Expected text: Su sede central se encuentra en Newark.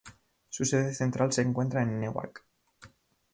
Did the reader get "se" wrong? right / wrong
right